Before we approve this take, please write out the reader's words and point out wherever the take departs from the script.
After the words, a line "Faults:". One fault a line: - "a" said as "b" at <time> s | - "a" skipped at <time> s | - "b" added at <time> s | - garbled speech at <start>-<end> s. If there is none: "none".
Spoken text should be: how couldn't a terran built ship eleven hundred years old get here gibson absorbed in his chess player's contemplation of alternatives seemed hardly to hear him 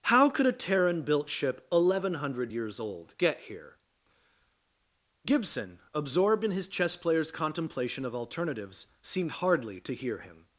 how could a terran built ship eleven hundred years old get here gibson absorbed in his chess player's contemplation of alternatives seemed hardly to hear him
Faults:
- "couldn't" said as "could" at 0.3 s